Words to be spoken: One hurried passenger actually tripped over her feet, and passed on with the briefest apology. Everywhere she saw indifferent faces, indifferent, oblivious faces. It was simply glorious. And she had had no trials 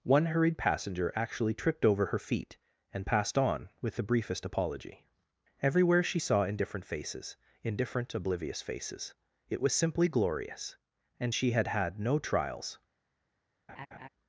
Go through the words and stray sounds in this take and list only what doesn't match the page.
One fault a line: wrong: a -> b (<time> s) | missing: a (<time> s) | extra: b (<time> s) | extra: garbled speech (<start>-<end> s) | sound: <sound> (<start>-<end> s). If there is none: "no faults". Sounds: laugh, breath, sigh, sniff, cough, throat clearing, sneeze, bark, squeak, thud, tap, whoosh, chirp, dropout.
sound: laugh (13.7-14.1 s)